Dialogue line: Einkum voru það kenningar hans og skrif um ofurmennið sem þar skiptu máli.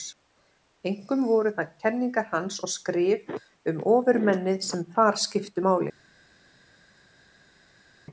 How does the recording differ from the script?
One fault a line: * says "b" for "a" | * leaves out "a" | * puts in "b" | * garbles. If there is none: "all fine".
all fine